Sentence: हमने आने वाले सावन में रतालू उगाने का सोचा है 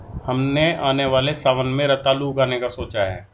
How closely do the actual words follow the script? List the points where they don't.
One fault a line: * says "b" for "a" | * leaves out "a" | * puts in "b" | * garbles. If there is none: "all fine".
all fine